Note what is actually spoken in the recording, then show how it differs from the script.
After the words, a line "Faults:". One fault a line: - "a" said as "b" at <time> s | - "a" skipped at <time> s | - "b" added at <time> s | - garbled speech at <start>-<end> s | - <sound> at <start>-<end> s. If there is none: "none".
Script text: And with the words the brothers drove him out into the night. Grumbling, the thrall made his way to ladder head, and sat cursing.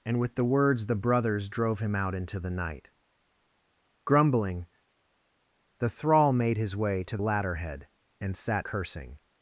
And with the words the brothers drove him out into the night. Grumbling, the thrall made his way to ladder head, and sat cursing.
Faults:
none